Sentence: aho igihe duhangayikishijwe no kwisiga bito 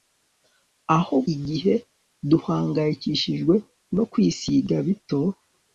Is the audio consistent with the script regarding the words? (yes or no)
yes